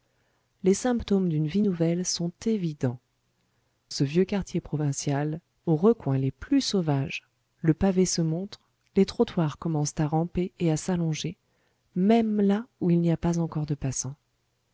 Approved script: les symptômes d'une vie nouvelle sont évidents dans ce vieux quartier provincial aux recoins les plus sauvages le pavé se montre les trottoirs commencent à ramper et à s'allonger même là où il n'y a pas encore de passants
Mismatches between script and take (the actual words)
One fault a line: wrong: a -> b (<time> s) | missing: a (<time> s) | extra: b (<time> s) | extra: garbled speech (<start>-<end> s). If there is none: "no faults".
missing: dans (3.0 s)